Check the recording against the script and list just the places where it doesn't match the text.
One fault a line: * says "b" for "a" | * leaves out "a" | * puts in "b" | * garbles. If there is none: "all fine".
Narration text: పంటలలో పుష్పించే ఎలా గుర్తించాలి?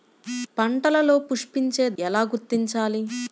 all fine